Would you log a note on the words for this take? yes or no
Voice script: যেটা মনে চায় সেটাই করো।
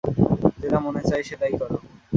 no